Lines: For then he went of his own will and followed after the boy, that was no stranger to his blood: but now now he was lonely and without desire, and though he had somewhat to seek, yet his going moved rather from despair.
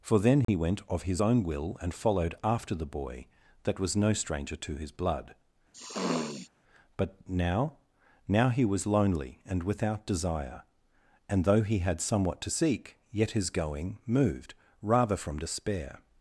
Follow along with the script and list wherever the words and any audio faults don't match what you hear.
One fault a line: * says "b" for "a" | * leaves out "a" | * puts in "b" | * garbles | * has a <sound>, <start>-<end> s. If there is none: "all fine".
* has a dropout, 0.4-0.5 s
* has a sniff, 5.7-6.5 s